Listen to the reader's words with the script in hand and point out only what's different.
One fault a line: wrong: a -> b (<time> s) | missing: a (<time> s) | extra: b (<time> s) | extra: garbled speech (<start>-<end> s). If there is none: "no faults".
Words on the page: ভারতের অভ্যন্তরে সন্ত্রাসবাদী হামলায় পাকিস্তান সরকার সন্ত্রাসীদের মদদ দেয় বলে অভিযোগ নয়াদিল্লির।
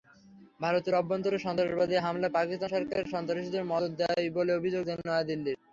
no faults